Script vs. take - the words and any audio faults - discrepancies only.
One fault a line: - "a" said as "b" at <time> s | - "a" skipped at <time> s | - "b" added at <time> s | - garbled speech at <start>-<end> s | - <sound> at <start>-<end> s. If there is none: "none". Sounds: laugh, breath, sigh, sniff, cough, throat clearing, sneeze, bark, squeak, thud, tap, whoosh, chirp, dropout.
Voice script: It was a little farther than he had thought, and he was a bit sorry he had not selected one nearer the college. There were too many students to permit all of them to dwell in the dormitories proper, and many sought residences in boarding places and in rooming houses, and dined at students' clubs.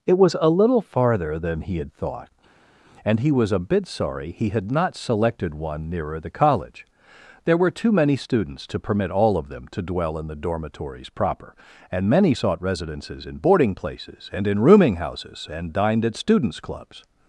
none